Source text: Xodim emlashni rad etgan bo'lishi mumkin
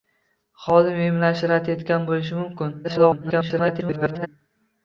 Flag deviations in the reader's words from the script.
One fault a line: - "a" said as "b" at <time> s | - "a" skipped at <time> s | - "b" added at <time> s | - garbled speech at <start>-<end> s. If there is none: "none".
- garbled speech at 2.8-4.3 s